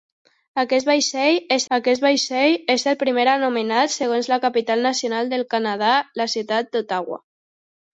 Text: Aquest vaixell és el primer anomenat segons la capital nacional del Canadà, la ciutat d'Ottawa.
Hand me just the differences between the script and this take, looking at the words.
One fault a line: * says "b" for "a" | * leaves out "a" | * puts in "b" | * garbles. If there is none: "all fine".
* puts in "aquest vaixell és"